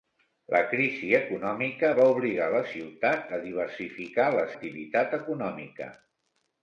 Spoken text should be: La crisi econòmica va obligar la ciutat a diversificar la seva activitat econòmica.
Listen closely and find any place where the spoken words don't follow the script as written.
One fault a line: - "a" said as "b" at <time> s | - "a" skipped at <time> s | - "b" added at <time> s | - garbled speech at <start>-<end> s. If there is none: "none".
- "seva" skipped at 4.5 s